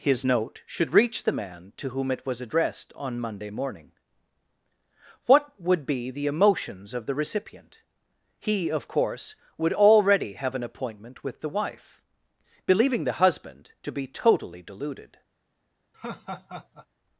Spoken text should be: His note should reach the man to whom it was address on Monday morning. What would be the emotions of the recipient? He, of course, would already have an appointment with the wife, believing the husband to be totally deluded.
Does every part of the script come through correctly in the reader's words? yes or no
no